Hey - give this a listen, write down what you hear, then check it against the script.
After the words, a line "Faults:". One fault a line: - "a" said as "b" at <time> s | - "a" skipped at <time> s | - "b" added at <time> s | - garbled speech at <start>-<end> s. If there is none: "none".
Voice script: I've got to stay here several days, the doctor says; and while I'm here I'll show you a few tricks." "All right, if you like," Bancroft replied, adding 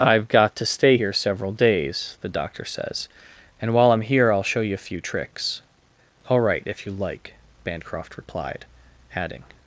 I've got to stay here several days, the doctor says; and while I'm here I'll show you a few tricks." "All right, if you like," Bancroft replied, adding
Faults:
none